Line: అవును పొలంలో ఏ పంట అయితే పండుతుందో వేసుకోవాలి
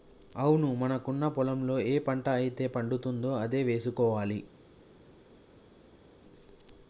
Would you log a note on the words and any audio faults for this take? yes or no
yes